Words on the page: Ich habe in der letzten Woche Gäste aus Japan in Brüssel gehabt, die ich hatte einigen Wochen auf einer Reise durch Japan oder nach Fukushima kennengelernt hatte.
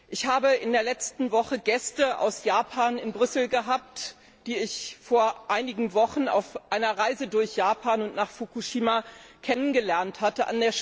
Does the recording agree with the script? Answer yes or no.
no